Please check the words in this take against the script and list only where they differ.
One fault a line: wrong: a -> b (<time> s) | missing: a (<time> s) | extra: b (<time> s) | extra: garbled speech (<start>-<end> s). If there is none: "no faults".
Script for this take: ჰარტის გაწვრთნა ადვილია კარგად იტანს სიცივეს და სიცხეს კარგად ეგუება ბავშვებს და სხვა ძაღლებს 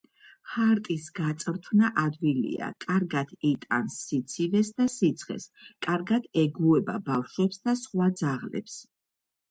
no faults